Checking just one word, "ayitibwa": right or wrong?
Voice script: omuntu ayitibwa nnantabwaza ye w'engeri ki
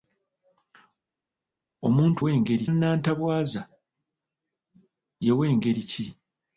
wrong